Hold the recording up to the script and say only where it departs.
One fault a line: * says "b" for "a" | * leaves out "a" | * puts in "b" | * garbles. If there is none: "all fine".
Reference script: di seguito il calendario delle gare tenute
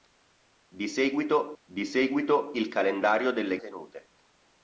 * puts in "di seguito"
* leaves out "gare"